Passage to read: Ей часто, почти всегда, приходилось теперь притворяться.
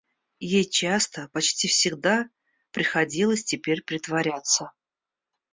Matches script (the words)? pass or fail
pass